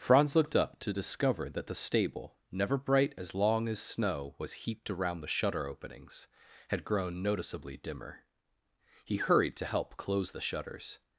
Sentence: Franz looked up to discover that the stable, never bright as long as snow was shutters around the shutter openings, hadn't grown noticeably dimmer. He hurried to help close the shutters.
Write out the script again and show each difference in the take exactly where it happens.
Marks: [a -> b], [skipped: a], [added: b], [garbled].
Franz looked up to discover that the stable, never bright as long as snow was [shutters -> heaped] around the shutter openings, [hadn't -> had] grown noticeably dimmer. He hurried to help close the shutters.